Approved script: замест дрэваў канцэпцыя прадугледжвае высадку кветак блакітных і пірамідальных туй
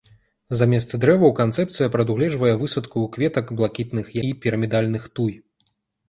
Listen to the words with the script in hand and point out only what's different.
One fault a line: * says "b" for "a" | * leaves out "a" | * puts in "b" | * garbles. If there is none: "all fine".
all fine